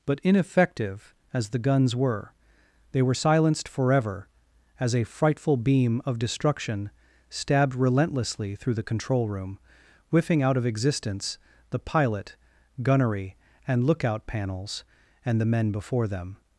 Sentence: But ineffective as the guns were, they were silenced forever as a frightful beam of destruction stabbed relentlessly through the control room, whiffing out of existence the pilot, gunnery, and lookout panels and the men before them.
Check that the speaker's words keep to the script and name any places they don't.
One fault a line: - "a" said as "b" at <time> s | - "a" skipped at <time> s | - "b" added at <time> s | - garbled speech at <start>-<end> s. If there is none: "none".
none